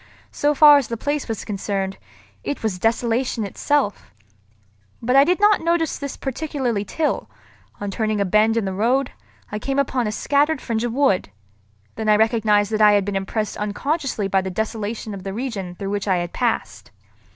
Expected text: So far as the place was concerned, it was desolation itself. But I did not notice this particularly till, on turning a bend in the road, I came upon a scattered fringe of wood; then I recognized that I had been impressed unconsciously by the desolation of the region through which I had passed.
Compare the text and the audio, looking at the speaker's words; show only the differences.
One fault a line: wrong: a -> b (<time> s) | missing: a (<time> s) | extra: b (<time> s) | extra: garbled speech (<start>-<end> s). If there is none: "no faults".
no faults